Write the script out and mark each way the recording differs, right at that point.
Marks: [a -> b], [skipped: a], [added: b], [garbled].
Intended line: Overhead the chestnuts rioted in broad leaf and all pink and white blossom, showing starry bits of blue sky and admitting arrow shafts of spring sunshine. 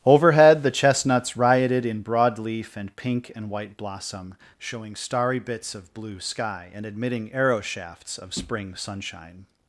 Overhead the chestnuts rioted in broad leaf and [skipped: all] pink and white blossom, showing starry bits of blue sky and admitting arrow shafts of spring sunshine.